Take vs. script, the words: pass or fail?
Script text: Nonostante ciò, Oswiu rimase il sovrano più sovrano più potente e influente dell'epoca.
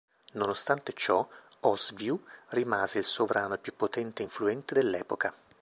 fail